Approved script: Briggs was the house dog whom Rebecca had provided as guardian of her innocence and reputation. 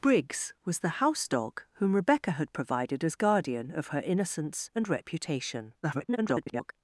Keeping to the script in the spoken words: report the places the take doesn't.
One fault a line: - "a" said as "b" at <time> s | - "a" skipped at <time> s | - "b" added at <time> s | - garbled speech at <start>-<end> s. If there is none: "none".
- garbled speech at 5.8-6.7 s